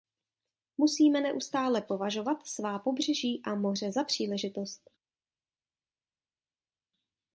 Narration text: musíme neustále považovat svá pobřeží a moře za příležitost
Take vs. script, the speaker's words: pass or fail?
pass